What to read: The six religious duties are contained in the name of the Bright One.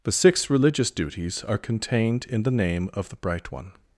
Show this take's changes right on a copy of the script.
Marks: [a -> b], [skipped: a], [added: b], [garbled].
The six religious duties are contained in the name of the Bright One.